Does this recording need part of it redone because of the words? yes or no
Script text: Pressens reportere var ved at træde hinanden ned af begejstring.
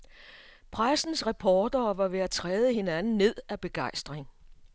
no